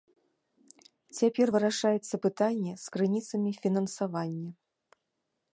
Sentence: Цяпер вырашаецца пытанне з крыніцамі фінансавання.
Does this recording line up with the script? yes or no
yes